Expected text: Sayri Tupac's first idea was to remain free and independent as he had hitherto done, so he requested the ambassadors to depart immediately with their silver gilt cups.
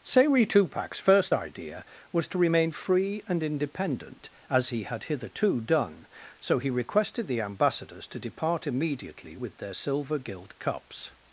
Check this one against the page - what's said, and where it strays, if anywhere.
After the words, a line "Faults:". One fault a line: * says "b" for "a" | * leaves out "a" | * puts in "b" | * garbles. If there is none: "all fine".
Sayri Tupac's first idea was to remain free and independent as he had hitherto done, so he requested the ambassadors to depart immediately with their silver gilt cups.
Faults:
all fine